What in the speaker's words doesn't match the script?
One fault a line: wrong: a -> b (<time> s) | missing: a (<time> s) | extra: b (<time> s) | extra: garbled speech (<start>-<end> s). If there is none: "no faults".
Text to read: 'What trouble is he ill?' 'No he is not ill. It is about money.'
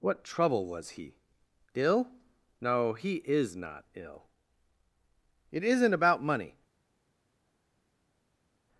wrong: is -> was (0.7 s)
wrong: is -> isn't (5.6 s)